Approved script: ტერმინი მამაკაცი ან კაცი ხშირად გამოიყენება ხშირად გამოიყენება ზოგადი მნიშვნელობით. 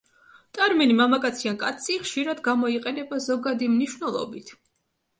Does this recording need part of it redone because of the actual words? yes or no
yes